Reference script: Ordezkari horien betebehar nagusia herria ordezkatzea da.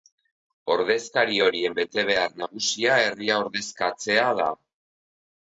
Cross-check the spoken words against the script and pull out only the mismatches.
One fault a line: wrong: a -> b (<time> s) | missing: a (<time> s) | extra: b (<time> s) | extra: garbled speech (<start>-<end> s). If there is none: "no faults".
no faults